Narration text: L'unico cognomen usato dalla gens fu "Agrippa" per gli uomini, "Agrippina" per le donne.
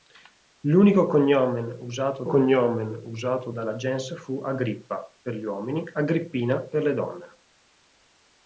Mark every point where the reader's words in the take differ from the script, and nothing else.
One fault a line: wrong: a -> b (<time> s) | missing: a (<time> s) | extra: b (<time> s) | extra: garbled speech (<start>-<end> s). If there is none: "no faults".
extra: cognomen usato (2.2 s)